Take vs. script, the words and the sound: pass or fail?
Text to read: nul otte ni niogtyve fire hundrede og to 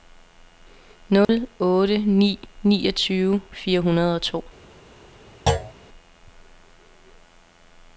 fail